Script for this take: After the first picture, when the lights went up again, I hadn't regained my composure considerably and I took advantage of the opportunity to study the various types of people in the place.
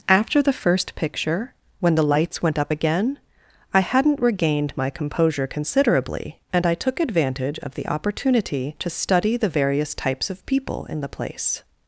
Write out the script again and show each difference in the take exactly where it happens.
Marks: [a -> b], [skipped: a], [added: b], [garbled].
After the first picture, when the lights went up again, I hadn't regained my composure considerably and I took advantage of the opportunity to study the various types of people in the place.